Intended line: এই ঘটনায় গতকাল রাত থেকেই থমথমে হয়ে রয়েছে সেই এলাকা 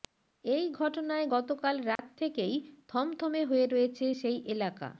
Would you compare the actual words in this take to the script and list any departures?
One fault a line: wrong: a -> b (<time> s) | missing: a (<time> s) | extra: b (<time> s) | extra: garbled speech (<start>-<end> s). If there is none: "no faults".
no faults